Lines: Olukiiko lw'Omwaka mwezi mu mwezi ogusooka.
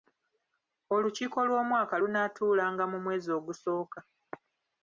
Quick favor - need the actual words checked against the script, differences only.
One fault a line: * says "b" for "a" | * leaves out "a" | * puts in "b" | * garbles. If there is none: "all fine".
* says "lunaatuulanga" for "mwezi"